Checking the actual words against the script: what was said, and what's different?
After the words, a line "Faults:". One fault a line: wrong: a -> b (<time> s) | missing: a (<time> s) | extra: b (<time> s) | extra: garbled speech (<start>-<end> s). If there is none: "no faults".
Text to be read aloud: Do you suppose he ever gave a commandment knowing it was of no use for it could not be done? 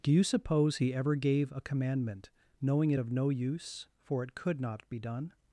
Do you suppose he ever gave a commandment knowing it of no use for it could not be done?
Faults:
missing: was (3.0 s)